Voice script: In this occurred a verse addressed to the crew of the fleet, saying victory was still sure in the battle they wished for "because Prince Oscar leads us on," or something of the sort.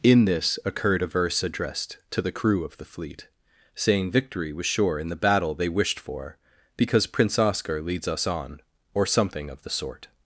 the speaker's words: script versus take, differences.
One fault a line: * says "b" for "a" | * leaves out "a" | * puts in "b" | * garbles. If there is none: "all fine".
* leaves out "still"